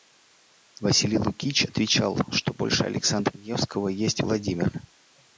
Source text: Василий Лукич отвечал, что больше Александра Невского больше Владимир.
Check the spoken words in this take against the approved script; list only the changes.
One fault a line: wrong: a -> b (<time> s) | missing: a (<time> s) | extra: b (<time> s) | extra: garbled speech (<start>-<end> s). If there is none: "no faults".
wrong: больше -> есть (3.9 s)